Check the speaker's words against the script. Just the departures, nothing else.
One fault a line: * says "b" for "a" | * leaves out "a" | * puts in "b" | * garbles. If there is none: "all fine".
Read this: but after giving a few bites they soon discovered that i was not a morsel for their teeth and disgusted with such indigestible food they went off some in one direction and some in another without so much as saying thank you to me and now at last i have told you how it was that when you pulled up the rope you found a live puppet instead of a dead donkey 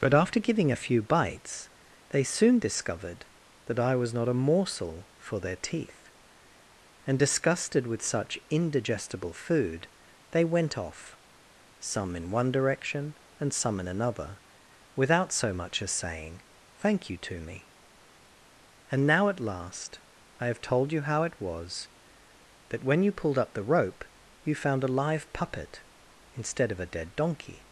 all fine